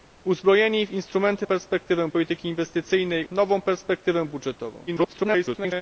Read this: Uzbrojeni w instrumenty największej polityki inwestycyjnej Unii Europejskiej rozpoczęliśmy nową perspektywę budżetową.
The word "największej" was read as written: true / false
false